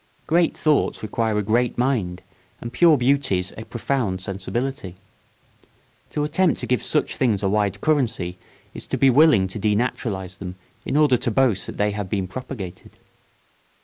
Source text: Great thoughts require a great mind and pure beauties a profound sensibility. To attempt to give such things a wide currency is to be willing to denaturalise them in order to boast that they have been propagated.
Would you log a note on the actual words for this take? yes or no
no